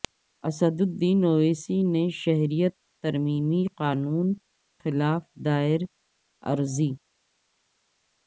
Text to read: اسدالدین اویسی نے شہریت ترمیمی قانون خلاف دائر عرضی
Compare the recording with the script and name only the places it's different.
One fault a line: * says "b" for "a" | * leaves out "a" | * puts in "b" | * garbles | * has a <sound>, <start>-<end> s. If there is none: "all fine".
all fine